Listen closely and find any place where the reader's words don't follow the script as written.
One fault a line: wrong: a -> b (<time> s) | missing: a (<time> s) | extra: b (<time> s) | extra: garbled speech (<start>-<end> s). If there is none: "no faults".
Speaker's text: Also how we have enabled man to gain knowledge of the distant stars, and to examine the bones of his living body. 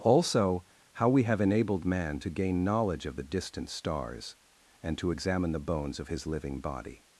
no faults